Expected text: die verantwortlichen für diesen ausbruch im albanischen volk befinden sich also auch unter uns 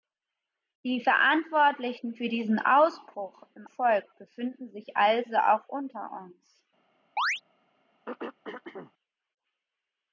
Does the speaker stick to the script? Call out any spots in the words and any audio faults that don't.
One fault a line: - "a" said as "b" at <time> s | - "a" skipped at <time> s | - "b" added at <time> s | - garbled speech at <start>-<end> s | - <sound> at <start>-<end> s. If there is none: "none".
- "albanischen" skipped at 3.7 s
- chirp at 7.2-7.4 s
- throat clearing at 8.1-8.9 s